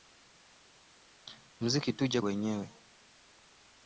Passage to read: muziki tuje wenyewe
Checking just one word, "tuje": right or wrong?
right